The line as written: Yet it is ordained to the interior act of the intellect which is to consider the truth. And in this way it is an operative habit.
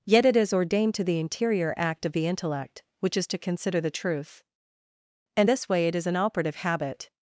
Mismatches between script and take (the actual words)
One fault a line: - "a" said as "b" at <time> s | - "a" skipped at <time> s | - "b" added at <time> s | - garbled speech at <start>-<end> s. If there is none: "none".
- "in" skipped at 5.5 s